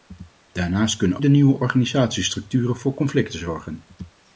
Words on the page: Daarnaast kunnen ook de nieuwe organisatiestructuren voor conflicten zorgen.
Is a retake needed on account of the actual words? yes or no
yes